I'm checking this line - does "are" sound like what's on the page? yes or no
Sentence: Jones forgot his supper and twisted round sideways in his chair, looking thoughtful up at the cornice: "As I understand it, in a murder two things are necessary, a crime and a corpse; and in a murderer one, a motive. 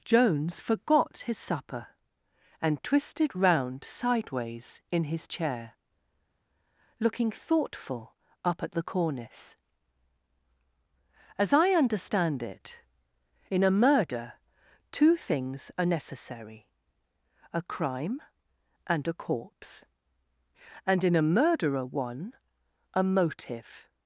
yes